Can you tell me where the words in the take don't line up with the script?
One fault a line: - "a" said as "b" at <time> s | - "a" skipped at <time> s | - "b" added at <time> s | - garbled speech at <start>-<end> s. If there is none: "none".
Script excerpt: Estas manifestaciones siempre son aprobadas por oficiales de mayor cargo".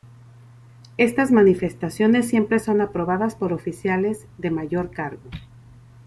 none